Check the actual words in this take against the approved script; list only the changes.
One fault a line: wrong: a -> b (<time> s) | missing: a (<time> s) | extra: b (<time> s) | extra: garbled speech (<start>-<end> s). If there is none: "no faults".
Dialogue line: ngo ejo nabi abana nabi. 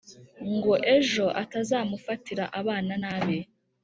wrong: nabi -> atazamufatira (1.4 s)